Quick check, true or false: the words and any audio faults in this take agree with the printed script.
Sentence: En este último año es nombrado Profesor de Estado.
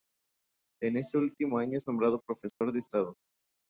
false